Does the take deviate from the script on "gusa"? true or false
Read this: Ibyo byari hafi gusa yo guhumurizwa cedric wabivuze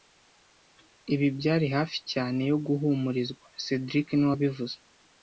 true